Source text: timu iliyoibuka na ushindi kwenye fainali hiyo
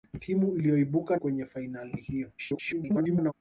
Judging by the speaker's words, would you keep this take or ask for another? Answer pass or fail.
fail